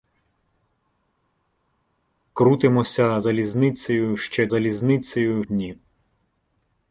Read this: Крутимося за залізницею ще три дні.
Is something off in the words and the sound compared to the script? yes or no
yes